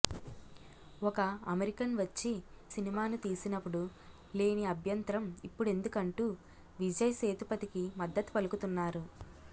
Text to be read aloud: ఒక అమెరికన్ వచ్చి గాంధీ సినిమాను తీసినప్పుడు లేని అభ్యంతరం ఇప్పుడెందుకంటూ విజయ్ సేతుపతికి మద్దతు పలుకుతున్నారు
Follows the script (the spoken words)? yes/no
no